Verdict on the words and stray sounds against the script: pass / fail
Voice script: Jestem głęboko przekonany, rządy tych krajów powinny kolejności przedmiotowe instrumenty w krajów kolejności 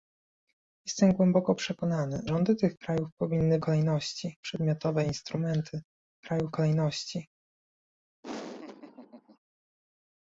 fail